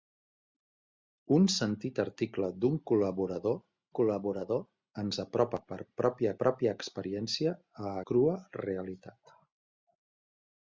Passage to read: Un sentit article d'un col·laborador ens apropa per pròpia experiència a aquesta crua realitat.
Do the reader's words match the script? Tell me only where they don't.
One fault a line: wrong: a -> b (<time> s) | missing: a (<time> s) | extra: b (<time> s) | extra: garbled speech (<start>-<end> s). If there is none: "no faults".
extra: col·laborador (4.0 s)
extra: pròpia (6.4 s)
missing: aquesta (7.9 s)